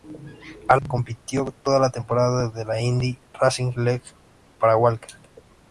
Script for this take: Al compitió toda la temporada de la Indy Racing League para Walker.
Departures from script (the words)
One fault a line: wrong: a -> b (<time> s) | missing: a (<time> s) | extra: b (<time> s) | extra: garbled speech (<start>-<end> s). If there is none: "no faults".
no faults